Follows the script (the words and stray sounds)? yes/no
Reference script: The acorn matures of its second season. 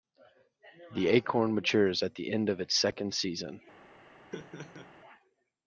no